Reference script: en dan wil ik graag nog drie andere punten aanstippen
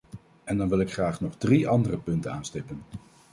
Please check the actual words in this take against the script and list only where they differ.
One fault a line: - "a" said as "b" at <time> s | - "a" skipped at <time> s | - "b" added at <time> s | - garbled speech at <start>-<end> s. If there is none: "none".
none